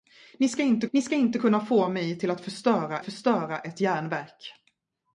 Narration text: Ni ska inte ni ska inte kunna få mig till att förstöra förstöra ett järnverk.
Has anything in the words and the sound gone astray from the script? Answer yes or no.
no